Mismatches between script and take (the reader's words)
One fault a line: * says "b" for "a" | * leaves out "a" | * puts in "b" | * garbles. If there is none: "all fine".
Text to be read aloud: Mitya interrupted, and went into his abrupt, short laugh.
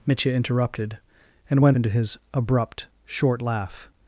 all fine